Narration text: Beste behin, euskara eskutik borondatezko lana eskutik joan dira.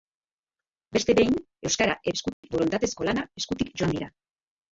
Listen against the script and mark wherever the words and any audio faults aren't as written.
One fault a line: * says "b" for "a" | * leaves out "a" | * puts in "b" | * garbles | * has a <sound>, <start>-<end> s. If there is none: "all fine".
* has a dropout, 2.3-2.4 s